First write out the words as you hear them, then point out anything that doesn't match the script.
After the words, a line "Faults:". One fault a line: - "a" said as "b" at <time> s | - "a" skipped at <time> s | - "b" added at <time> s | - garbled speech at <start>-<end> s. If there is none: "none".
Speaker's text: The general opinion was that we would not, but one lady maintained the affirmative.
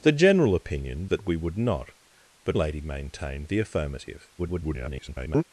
The general opinion that we would not, but lady maintained the affirmative. [garbled]
Faults:
- "was" skipped at 1.1 s
- "one" skipped at 2.6 s
- garbled speech at 4.4-5.4 s